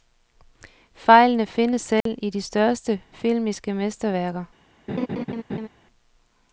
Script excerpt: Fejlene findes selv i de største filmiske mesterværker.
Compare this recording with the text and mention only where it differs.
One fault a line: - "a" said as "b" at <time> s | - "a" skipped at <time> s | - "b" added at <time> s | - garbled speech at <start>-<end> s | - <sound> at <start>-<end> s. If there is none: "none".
- dropout at 2.0-2.1 s
- laugh at 4.9-5.7 s